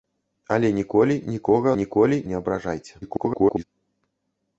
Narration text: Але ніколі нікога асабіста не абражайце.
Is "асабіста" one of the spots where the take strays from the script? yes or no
yes